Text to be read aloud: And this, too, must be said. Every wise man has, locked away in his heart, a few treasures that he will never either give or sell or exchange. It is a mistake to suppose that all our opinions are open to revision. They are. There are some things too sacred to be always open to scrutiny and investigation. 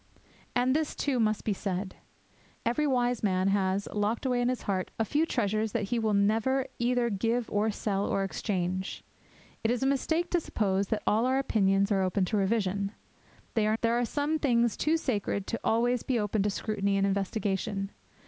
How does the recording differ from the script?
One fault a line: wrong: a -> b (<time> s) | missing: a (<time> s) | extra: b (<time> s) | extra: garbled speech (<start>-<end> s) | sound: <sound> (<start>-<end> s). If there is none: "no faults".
no faults